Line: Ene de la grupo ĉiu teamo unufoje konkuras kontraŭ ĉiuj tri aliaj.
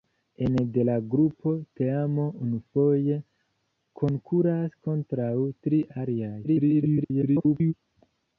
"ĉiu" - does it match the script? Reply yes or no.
no